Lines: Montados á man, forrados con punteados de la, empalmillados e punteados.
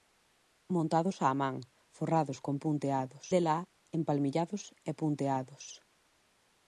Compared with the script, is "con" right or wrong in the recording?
right